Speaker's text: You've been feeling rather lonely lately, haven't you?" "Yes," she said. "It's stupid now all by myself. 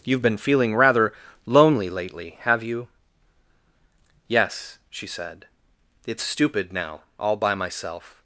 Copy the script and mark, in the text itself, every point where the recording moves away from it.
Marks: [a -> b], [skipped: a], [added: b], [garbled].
You've been feeling rather lonely lately, [haven't -> have] you?" "Yes," she said. "It's stupid now all by myself.